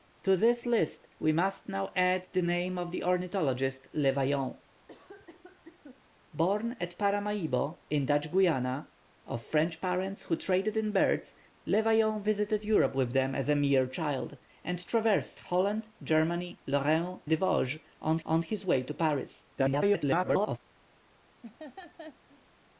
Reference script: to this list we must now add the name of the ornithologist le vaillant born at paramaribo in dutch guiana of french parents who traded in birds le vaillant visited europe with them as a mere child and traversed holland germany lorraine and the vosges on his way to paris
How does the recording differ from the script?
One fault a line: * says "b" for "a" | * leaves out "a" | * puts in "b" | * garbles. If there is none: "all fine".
* leaves out "and"
* puts in "on"
* garbles